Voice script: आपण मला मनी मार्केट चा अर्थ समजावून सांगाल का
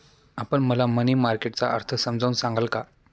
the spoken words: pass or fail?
pass